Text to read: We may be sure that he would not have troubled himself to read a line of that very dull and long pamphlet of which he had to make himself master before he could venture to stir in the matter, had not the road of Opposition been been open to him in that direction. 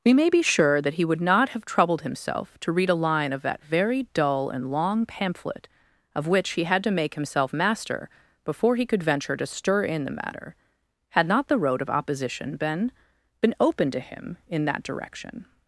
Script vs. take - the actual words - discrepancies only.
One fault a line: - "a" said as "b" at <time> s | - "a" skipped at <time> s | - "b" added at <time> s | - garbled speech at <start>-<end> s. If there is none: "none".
none